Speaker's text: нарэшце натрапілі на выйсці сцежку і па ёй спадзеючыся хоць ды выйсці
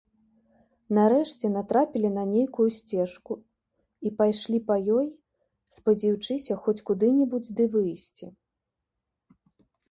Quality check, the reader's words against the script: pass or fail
fail